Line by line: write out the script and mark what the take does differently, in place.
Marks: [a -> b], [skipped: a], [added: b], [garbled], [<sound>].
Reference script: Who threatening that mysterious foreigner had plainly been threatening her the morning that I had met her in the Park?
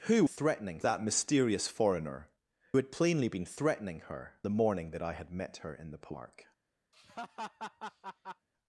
Who threatening that mysterious foreigner had plainly been threatening her the morning that I had met her in the Park? [laugh]